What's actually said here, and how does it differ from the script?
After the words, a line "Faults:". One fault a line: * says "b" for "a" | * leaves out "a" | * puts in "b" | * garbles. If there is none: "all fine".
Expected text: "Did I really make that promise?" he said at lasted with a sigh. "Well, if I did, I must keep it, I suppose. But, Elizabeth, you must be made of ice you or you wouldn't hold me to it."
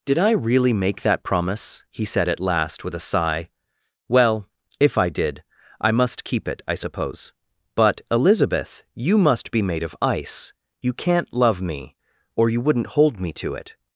"Did I really make that promise?" he said at last with a sigh. "Well, if I did, I must keep it, I suppose. But, Elizabeth, you must be made of ice you can't love me, or you wouldn't hold me to it."
Faults:
* says "last" for "lasted"
* puts in "can't love me"